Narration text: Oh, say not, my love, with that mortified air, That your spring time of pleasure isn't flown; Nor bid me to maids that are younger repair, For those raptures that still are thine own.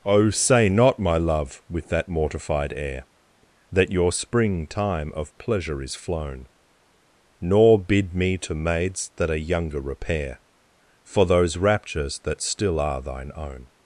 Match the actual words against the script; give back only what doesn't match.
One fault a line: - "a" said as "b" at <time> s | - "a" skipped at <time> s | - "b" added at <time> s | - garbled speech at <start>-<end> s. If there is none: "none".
- "isn't" said as "is" at 5.8 s